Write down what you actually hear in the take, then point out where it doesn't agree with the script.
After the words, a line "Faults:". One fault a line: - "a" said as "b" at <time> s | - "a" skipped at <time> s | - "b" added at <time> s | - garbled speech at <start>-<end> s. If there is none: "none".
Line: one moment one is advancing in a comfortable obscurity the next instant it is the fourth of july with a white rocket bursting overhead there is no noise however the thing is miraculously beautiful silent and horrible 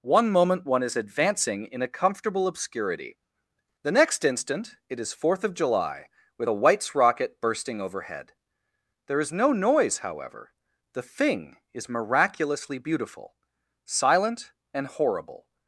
one moment one is advancing in a comfortable obscurity the next instant it is fourth of july with a whites rocket bursting overhead there is no noise however the thing is miraculously beautiful silent and horrible
Faults:
- "the" skipped at 5.1 s
- "white" said as "whites" at 6.5 s